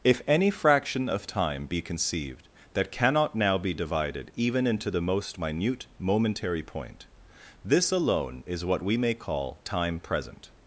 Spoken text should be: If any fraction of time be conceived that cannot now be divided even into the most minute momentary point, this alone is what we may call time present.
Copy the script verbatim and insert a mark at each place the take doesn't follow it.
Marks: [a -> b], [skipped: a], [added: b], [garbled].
If any fraction of time be conceived that cannot now be divided even into the most minute momentary point, this alone is what we may call time present.